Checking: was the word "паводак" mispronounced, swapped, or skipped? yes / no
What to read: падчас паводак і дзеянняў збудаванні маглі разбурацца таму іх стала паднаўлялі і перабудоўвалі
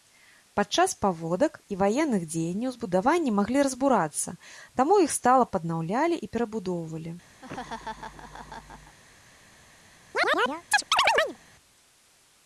no